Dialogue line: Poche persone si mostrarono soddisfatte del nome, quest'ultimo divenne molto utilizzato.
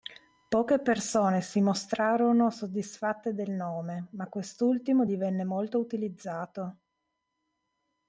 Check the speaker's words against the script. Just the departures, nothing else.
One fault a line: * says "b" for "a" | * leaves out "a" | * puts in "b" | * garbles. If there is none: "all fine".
* puts in "ma"